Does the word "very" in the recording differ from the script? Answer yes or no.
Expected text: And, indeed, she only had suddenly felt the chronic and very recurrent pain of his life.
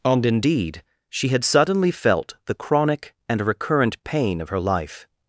yes